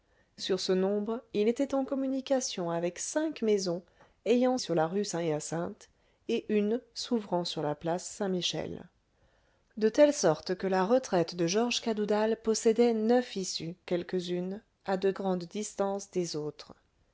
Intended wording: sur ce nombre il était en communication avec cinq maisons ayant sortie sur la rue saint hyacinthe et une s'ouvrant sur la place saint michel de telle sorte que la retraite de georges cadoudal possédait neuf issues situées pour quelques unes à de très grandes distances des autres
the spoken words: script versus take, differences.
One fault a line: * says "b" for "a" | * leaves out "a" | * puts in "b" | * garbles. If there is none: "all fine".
* leaves out "sortie"
* leaves out "situées pour"
* leaves out "très"